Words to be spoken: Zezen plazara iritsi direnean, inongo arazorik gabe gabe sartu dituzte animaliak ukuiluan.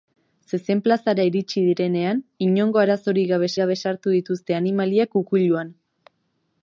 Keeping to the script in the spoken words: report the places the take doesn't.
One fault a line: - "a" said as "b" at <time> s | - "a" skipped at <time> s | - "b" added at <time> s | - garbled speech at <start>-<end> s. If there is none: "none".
none